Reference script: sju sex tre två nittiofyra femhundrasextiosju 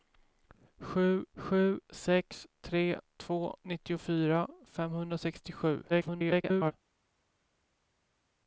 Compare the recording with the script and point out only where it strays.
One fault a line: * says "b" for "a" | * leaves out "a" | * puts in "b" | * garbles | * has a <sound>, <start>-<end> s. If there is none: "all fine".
* puts in "sju"
* garbles